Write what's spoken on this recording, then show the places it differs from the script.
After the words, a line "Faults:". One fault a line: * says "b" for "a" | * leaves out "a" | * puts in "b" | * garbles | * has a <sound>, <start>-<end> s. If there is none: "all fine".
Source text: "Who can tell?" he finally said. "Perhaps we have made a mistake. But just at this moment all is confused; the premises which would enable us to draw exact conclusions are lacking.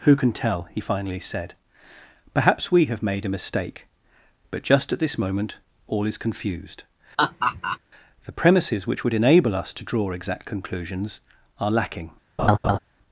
"Who can tell?" he finally said. "Perhaps we have made a mistake. But just at this moment all is confused; the premises which would enable us to draw exact conclusions are lacking.
Faults:
* has a laugh, 7.2-7.8 s
* has a laugh, 12.4-12.8 s